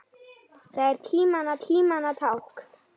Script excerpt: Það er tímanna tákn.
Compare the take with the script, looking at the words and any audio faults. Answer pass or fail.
fail